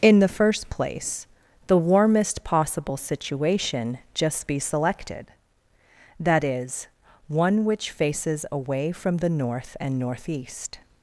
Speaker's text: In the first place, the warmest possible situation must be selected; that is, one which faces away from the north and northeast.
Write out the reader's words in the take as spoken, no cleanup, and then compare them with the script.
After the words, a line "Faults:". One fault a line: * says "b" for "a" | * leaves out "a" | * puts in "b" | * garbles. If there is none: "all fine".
In the first place, the warmest possible situation just be selected; that is, one which faces away from the north and northeast.
Faults:
* says "just" for "must"